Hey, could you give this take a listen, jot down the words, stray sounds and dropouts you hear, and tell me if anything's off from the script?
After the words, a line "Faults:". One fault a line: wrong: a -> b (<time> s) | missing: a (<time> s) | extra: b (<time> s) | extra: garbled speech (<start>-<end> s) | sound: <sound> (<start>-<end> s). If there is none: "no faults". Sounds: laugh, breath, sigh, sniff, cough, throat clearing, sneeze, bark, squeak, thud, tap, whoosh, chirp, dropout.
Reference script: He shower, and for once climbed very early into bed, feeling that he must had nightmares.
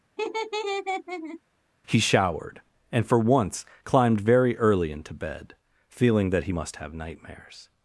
He showered, and for once climbed very early into bed, feeling that he must have nightmares.
Faults:
sound: laugh (0.2-1.4 s)
wrong: shower -> showered (2.0 s)
wrong: had -> have (6.8 s)